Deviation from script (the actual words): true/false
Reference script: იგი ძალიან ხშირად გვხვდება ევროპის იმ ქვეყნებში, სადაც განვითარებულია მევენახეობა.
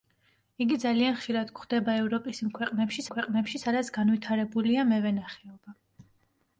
true